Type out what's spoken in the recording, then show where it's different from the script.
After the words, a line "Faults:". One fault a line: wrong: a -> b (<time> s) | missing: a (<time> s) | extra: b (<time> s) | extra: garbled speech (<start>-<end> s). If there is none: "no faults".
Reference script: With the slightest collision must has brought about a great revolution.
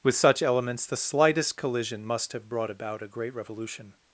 With such elements the slightest collision must have brought about a great revolution.
Faults:
extra: such elements (0.1 s)
wrong: has -> have (2.3 s)